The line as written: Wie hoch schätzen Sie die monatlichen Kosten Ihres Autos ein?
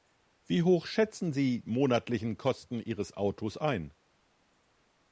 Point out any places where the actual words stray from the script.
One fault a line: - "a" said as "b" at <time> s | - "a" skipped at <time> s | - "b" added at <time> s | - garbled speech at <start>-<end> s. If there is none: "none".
- "die" skipped at 1.6 s